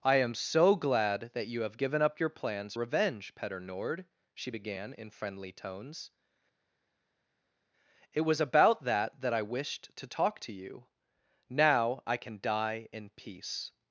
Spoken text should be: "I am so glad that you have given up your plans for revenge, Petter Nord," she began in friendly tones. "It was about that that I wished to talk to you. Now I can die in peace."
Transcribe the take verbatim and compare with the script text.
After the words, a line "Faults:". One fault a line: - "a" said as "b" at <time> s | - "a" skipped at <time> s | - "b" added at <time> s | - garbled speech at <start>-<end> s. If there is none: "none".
"I am so glad that you have given up your plans revenge, Petter Nord," she began in friendly tones. "It was about that that I wished to talk to you. Now I can die in peace."
Faults:
- "for" skipped at 2.7 s